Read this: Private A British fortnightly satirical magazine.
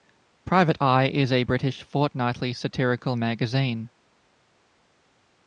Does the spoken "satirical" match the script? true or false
true